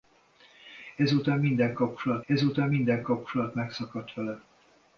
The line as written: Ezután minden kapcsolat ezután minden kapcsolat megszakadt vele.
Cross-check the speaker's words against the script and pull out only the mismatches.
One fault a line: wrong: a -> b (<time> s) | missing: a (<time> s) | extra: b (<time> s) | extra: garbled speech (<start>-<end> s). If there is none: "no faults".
no faults